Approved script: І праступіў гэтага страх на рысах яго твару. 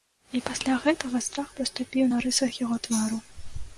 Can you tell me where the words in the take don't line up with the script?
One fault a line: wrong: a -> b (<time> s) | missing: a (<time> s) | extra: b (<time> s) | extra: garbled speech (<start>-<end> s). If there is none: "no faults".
wrong: праступіў -> пасля (0.5 s)
extra: праступіў (1.6 s)